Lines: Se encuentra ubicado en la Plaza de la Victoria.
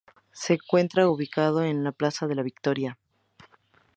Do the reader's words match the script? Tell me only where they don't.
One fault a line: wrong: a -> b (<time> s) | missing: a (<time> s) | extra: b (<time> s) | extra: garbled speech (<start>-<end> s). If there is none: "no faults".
no faults